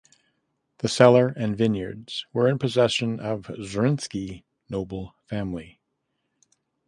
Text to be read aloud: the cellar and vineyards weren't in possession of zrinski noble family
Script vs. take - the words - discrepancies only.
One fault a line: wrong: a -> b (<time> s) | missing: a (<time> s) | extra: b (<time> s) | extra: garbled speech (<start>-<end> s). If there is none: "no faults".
wrong: weren't -> were (2.3 s)